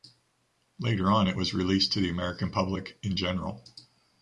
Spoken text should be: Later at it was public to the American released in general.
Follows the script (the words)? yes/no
no